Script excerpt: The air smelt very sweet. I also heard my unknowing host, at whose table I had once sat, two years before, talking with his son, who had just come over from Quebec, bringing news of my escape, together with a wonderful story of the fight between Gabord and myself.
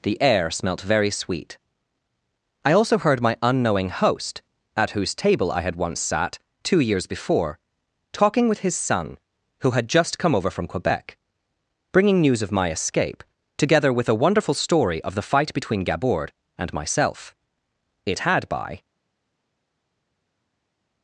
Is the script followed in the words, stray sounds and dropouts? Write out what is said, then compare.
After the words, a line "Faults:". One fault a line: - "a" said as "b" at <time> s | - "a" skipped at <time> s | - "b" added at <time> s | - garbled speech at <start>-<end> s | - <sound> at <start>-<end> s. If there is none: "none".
The air smelt very sweet. I also heard my unknowing host, at whose table I had once sat, two years before, talking with his son, who had just come over from Quebec, bringing news of my escape, together with a wonderful story of the fight between Gabord and myself. It had, by
Faults:
- "It had by" added at 18.1 s